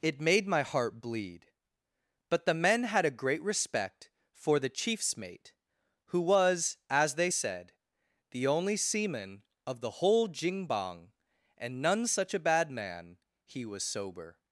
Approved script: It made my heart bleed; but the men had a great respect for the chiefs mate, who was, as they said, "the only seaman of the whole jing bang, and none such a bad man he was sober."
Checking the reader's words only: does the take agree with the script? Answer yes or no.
yes